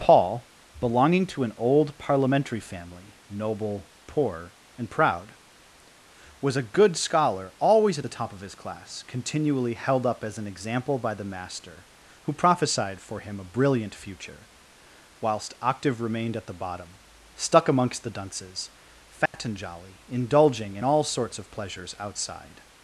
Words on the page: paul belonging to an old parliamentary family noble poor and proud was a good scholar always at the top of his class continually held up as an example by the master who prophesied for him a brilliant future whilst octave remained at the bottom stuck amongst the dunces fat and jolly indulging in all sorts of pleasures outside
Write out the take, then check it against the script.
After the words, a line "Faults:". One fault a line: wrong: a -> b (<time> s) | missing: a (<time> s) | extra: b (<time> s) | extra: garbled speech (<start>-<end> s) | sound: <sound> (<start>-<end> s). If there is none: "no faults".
paul belonging to an old parliamentary family noble poor and proud was a good scholar always at the top of his class continually held up as an example by the master who prophesied for him a brilliant future whilst octave remained at the bottom stuck amongst the dunces fat and jolly indulging in all sorts of pleasures outside
Faults:
sound: dropout (19.3-19.3 s)